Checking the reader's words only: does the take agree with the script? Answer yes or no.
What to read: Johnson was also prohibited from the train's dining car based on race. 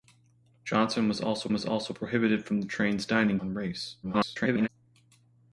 no